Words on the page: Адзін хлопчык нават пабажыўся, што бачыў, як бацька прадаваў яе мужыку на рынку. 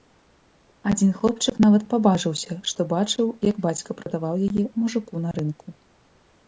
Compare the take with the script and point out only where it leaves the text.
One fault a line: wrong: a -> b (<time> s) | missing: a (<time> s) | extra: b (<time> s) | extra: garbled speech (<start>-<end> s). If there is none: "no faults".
no faults